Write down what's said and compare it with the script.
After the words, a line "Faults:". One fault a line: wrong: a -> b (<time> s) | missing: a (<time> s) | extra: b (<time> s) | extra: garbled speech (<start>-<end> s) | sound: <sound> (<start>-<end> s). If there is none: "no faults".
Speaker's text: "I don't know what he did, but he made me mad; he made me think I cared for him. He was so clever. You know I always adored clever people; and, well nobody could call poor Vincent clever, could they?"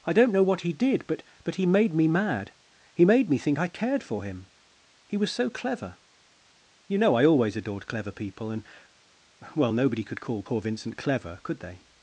"I don't know what he did, but but he made me mad; he made me think I cared for him. He was so clever. You know I always adored clever people; and, well nobody could call poor Vincent clever, could they?"
Faults:
extra: but (1.4 s)